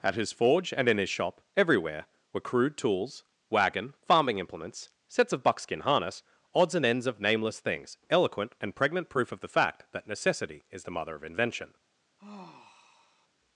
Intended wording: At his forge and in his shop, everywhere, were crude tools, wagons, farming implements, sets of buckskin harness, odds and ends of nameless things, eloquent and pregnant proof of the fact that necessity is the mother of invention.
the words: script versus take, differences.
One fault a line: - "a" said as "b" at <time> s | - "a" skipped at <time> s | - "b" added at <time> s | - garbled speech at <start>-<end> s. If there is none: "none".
- "wagons" said as "wagon" at 3.5 s